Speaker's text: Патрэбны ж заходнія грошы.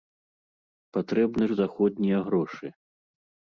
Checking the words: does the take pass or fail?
pass